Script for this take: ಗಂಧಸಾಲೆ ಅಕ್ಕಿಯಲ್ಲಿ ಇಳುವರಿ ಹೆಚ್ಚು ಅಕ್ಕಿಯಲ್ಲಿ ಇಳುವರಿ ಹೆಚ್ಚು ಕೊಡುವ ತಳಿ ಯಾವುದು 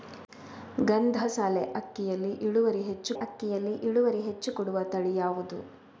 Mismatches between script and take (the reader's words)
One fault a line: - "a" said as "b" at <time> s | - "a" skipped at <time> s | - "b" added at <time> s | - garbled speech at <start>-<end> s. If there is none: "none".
none